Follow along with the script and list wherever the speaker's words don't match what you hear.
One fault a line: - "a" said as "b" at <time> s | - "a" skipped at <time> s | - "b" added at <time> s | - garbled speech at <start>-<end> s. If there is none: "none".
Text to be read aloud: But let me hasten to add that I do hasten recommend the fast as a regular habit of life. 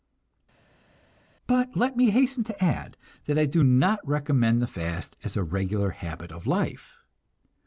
- "hasten" said as "not" at 3.6 s